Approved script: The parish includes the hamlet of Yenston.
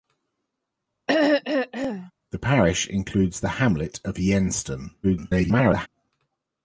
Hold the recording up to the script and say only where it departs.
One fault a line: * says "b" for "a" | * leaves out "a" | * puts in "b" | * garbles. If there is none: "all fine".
* garbles